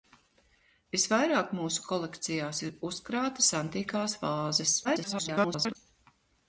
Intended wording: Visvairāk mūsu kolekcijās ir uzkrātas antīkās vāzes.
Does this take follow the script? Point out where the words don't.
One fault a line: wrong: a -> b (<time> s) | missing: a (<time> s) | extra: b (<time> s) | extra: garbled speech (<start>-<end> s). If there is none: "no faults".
extra: garbled speech (4.8-5.8 s)